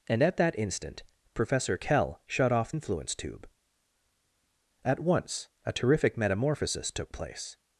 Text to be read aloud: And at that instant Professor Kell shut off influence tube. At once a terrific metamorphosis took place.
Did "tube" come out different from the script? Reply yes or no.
no